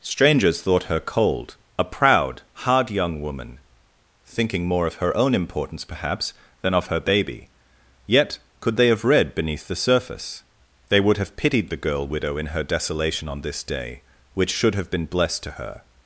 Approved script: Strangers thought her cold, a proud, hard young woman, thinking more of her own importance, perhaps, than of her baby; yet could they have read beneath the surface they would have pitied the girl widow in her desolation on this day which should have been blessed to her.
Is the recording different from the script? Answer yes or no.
no